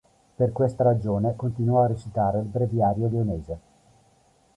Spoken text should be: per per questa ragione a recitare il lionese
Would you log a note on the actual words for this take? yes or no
yes